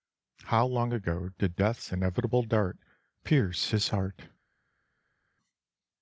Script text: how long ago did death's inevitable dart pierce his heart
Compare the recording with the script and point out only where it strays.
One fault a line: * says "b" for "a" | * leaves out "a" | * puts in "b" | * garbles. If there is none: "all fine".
all fine